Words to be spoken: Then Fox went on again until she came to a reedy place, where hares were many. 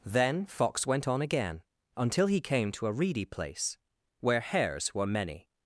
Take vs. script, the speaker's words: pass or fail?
fail